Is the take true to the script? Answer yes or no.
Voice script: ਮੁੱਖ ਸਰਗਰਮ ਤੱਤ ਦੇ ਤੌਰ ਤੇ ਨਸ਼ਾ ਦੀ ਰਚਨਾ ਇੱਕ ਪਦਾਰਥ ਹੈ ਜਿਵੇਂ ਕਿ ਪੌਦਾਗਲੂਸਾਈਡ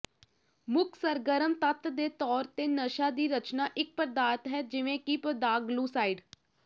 yes